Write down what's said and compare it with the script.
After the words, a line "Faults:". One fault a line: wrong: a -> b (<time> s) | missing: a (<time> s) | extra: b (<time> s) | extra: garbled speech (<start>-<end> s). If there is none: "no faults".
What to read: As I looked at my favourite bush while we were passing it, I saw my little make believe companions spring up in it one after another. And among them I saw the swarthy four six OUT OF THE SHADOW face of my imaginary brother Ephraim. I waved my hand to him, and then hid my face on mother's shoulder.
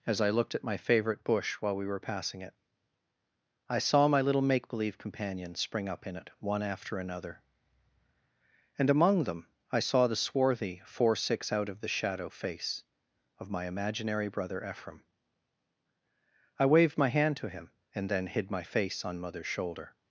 As I looked at my favourite bush while we were passing it, I saw my little make believe companions spring up in it one after another. And among them I saw the swarthy four six OUT OF THE SHADOW face of my imaginary brother Ephraim. I waved my hand to him, and then hid my face on mother's shoulder.
Faults:
no faults